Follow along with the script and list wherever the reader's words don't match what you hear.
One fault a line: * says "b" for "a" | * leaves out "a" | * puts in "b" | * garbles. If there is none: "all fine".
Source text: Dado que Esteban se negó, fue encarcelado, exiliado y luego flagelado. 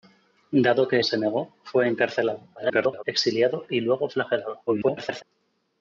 * leaves out "Esteban"
* garbles
* garbles